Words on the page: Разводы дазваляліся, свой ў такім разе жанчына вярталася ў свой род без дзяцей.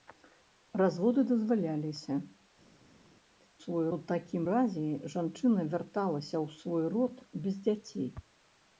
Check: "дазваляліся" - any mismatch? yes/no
no